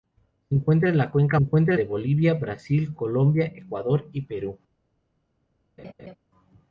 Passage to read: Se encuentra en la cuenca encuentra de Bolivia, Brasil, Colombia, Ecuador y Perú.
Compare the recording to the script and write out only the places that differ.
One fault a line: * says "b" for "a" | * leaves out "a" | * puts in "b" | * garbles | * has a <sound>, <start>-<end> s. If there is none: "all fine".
* has a laugh, 5.8-6.2 s